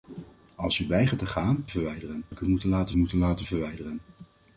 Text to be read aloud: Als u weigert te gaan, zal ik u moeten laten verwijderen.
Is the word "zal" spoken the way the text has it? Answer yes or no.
no